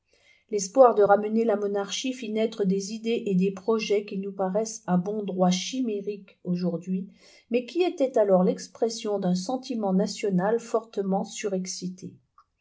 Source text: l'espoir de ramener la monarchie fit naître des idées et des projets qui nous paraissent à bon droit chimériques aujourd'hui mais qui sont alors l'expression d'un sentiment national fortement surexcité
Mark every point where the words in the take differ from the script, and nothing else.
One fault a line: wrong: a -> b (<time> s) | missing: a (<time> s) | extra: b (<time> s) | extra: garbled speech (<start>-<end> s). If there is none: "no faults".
wrong: sont -> étaient (7.8 s)